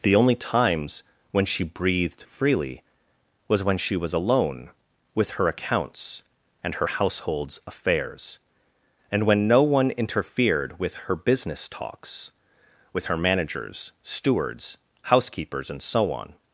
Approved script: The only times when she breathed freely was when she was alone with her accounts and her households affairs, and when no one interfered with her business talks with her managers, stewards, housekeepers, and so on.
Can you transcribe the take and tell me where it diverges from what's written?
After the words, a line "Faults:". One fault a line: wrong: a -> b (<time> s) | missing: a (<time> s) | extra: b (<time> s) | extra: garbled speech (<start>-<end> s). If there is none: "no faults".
The only times when she breathed freely was when she was alone with her accounts and her households affairs, and when no one interfered with her business talks with her managers, stewards, housekeepers, and so on.
Faults:
no faults